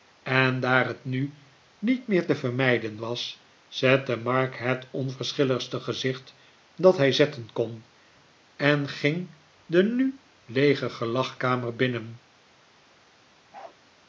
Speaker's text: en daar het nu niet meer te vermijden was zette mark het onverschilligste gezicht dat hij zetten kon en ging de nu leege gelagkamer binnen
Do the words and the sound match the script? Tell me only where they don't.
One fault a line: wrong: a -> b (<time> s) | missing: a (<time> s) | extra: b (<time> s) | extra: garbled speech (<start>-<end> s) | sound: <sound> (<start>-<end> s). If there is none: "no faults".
sound: bark (13.5-13.8 s)